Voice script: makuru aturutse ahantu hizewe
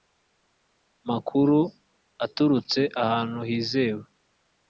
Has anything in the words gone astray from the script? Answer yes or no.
no